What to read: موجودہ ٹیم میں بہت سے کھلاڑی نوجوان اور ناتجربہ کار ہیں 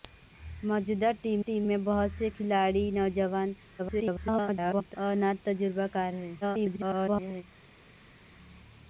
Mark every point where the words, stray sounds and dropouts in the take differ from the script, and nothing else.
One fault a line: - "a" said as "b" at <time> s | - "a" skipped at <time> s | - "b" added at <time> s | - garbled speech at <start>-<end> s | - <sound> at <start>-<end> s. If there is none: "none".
- "ٹیم" added at 1.4 s
- garbled speech at 3.8-5.0 s
- garbled speech at 6.4-7.4 s